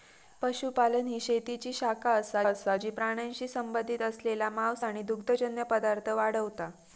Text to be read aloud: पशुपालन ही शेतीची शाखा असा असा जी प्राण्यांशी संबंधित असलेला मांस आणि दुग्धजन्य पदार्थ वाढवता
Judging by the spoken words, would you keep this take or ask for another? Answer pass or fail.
pass